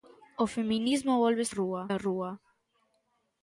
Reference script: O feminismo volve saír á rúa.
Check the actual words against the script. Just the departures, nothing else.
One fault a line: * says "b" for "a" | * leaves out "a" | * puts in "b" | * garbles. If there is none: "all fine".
* says "rúa" for "saír"